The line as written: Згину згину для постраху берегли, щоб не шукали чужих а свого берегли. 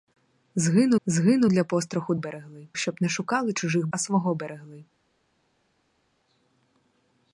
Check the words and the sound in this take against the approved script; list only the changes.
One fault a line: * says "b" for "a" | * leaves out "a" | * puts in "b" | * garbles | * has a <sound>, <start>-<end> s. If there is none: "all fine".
all fine